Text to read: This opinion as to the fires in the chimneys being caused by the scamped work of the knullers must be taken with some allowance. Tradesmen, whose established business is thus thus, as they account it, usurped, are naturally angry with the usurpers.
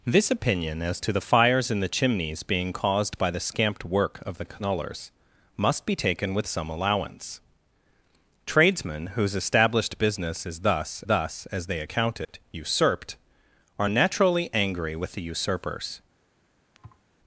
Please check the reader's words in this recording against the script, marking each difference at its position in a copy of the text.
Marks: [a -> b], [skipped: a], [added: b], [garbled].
This opinion as to the fires in the chimneys being caused by the scamped work of the knullers must be taken with some allowance. Tradesmen, whose established business is thus thus, as they account it, usurped, are naturally angry with the usurpers.